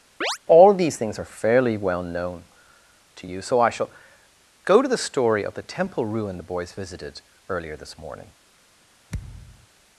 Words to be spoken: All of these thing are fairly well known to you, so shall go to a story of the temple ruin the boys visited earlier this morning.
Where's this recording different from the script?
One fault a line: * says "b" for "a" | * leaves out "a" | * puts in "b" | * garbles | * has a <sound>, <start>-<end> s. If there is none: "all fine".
* has a chirp, 0.2-0.4 s
* says "things" for "thing"
* puts in "I"
* says "the" for "a"
* has a thud, 9.1-9.7 s